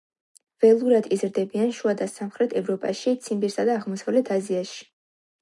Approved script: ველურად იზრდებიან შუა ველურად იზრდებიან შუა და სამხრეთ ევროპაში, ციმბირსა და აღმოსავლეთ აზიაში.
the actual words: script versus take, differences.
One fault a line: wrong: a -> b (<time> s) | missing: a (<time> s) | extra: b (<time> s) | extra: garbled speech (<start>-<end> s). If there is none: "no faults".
missing: ველურად იზრდებიან შუა (1.9 s)